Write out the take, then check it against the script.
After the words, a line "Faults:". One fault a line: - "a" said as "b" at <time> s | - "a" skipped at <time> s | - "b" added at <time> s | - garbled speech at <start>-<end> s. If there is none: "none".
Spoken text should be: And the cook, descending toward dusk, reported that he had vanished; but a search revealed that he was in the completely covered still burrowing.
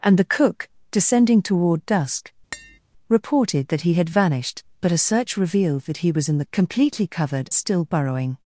And the cook, descending toward dusk, reported that he had vanished; but a search revealed that he was in the completely covered still burrowing.
Faults:
none